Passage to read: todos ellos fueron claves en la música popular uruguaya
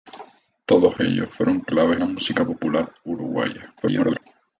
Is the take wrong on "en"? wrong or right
wrong